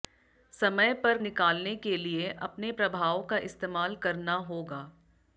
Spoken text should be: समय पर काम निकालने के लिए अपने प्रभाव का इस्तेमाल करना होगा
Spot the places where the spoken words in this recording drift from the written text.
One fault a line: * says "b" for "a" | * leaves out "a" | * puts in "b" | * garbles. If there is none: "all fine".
* leaves out "काम"